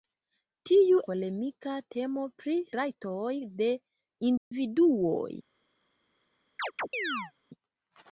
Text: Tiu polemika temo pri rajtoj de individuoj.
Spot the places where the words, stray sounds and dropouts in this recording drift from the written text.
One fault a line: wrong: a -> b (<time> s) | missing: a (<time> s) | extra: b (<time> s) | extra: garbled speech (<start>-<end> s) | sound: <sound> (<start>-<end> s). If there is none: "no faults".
sound: dropout (4.4-4.5 s)
sound: chirp (6.6-7.3 s)